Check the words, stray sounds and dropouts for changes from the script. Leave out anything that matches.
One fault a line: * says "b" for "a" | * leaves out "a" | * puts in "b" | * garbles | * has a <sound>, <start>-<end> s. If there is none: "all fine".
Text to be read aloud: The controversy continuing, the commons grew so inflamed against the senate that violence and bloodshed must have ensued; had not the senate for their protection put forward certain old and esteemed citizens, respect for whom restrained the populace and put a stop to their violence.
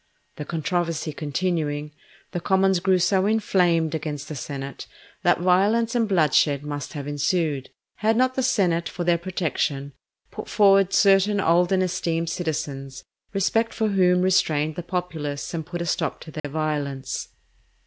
* has a dropout, 16.4-16.4 s